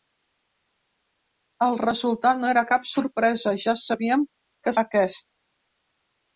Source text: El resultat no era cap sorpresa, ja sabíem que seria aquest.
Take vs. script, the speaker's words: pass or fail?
fail